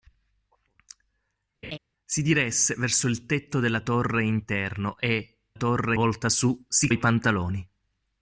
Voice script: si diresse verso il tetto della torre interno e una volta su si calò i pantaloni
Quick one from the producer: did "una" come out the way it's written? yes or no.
no